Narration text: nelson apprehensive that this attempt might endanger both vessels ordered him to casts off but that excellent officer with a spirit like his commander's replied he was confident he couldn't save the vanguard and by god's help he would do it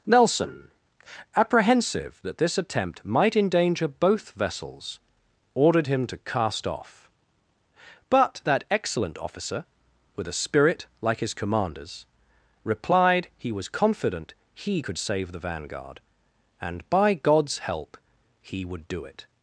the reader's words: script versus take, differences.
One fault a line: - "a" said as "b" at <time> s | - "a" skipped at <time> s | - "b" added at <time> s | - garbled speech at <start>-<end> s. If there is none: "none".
- "casts" said as "cast" at 6.2 s
- "couldn't" said as "could" at 14.8 s